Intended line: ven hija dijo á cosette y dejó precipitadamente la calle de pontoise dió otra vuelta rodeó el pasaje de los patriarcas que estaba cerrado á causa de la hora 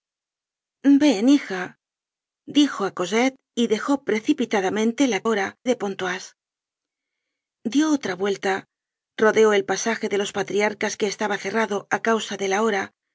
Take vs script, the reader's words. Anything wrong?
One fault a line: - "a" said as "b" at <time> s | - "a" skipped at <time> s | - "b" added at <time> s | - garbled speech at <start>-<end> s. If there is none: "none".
- "calle" said as "hora" at 5.3 s